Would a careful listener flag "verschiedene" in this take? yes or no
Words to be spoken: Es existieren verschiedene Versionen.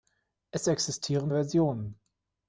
yes